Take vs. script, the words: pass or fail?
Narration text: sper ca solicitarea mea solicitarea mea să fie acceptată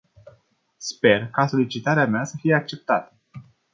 fail